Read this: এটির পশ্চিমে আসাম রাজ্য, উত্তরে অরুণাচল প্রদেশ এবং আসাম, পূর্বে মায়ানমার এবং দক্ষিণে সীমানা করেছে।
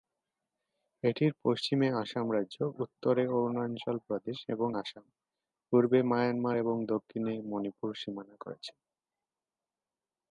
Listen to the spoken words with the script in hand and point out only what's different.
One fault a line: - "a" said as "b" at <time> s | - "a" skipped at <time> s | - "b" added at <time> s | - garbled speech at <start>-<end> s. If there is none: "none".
- "মণিপুর" added at 7.5 s